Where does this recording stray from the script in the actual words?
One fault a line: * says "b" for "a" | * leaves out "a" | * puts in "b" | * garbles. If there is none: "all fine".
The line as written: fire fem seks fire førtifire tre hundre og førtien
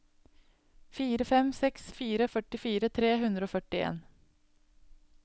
all fine